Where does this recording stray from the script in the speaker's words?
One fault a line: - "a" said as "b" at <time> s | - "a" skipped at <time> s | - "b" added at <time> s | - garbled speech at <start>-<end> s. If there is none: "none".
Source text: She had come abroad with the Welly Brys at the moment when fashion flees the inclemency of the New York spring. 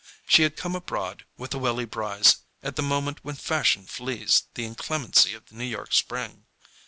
none